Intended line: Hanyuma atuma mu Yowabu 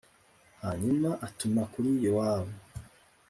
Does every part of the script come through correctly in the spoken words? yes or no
no